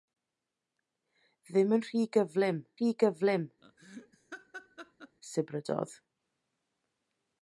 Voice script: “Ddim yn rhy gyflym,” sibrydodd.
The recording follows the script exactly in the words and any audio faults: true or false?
false